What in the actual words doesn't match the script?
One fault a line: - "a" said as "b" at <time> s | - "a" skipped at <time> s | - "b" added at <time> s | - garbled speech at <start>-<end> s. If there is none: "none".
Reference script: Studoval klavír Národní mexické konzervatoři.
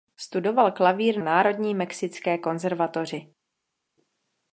none